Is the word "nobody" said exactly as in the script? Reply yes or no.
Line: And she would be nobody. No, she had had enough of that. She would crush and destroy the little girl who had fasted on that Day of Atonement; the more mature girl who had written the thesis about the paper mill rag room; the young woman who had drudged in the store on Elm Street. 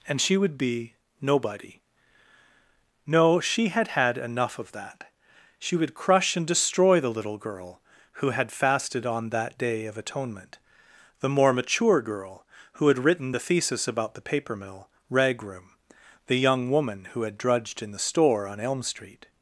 yes